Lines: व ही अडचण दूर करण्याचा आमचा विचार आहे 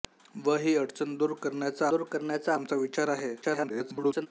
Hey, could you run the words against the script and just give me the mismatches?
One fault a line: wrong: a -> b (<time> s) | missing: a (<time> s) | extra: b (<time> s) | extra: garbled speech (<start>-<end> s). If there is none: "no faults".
extra: दूर करण्याचा (1.9 s)
extra: garbled speech (3.4-4.3 s)